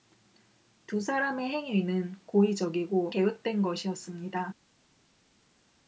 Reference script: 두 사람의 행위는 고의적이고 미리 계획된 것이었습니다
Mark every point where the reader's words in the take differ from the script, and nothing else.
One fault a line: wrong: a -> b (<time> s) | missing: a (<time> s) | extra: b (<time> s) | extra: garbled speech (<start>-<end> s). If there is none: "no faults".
missing: 미리 (3.1 s)